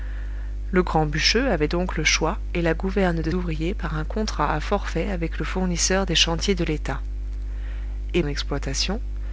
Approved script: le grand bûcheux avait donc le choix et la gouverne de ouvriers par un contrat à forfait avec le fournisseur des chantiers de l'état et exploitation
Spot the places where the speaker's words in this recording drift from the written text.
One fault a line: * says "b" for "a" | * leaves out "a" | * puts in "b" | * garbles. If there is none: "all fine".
all fine